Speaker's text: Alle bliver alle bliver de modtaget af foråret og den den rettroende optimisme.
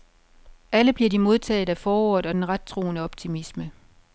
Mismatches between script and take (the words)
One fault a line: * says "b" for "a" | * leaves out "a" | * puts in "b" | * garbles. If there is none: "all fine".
* leaves out "alle bliver"
* leaves out "den"